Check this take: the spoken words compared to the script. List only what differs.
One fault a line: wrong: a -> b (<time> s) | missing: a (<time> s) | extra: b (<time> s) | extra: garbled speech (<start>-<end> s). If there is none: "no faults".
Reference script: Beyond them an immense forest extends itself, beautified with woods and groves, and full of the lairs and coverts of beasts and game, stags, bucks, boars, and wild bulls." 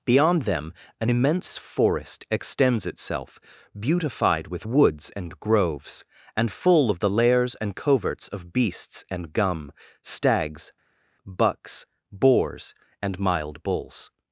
wrong: game -> gum (9.3 s)
wrong: wild -> mild (13.2 s)